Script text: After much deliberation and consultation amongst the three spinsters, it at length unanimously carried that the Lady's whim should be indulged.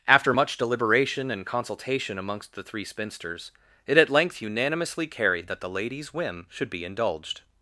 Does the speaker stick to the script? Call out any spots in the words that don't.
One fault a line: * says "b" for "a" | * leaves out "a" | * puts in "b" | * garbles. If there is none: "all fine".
all fine